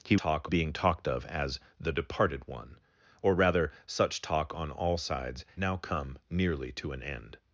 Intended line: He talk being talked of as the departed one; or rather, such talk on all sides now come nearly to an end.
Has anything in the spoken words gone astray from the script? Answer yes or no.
no